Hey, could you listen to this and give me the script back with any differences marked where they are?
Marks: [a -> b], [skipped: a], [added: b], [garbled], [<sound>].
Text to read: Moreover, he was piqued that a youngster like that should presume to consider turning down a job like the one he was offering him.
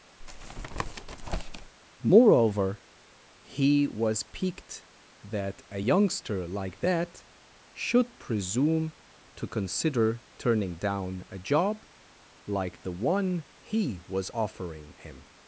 [tap] Moreover, he was piqued that a youngster like that should presume to consider turning down a job like the one he was offering him.